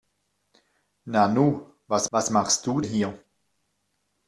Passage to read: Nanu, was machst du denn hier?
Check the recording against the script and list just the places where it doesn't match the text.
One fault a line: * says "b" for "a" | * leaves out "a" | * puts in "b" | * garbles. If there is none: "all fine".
* puts in "was"
* leaves out "denn"